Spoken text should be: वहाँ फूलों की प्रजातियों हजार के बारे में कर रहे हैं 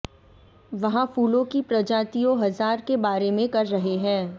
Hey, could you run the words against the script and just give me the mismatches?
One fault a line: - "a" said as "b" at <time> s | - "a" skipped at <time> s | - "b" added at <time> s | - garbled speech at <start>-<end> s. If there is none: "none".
none